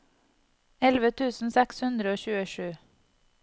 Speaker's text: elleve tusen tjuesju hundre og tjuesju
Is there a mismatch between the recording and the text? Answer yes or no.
yes